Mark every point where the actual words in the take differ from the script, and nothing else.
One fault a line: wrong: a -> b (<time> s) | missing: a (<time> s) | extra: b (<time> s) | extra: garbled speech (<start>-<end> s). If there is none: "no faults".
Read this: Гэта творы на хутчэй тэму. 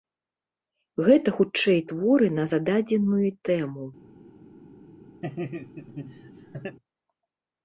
extra: хутчэй (1.4 s)
wrong: хутчэй -> зададзеную (2.5 s)